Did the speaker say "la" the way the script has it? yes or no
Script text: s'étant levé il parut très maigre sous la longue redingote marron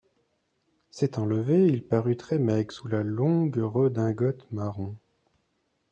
yes